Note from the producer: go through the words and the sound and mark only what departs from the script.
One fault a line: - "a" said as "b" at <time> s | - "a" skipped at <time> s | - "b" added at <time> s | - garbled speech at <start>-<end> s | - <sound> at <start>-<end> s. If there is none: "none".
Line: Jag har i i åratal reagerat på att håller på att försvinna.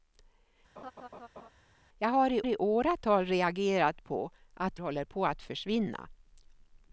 - laugh at 0.8-1.5 s